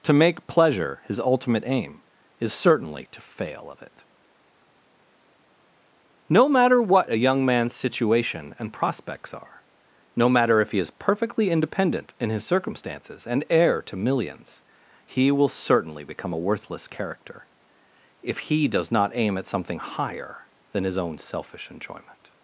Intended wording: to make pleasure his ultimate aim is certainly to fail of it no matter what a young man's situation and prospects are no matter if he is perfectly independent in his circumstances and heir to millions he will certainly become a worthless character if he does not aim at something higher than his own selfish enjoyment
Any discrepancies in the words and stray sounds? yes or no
no